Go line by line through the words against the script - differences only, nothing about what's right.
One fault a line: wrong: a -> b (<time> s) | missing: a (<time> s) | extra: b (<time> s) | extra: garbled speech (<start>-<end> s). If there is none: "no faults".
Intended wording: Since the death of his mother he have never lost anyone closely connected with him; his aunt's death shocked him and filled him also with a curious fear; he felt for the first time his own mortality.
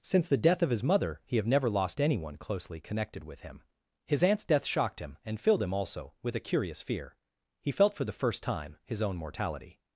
no faults